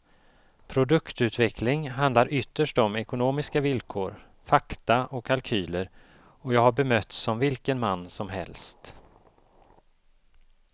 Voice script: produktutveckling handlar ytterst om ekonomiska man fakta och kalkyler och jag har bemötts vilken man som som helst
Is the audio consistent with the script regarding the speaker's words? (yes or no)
no